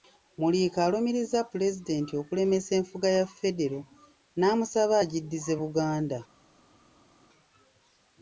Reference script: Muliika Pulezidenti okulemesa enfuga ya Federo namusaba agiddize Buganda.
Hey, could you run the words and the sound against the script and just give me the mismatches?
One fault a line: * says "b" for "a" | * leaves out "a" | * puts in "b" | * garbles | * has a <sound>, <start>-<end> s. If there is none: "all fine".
* puts in "alumiriza"